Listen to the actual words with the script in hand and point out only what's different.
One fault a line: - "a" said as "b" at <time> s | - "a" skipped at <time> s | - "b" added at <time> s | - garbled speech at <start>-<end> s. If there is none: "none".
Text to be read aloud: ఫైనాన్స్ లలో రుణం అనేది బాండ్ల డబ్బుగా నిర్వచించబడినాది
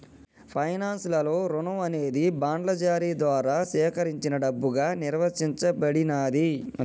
- "జారీ ద్వారా సేకరించిన" added at 2.8 s